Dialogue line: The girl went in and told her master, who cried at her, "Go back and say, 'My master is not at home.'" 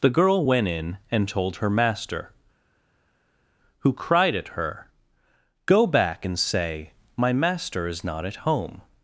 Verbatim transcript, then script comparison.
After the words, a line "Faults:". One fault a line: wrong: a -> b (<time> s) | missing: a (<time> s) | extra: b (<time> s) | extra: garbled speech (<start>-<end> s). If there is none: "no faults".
The girl went in and told her master, who cried at her, "Go back and say, 'My master is not at home.'"
Faults:
no faults